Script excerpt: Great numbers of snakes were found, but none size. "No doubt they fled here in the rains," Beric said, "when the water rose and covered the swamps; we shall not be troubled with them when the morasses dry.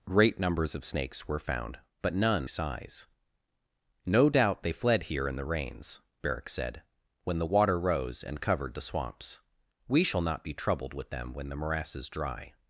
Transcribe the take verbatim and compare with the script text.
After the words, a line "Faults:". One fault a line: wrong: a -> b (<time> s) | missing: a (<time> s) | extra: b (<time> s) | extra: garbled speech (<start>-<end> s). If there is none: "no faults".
Great numbers of snakes were found, but none size. "No doubt they fled here in the rains," Beric said, "when the water rose and covered the swamps; we shall not be troubled with them when the morasses dry.
Faults:
no faults